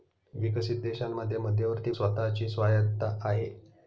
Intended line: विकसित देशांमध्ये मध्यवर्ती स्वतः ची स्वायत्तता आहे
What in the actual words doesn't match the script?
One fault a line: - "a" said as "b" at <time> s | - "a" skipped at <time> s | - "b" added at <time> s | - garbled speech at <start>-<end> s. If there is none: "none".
none